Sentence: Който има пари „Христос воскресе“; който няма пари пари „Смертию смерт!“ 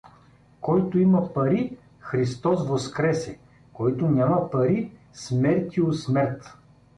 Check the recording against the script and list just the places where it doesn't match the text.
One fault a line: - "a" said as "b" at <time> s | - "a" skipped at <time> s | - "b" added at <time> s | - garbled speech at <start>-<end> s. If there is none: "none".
- "пари" skipped at 4.9 s